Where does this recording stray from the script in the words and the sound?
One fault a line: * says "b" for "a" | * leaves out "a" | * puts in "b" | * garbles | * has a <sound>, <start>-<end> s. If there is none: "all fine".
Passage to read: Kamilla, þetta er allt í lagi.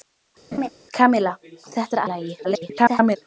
* has a laugh, 0.5-0.7 s
* leaves out "allt"
* garbles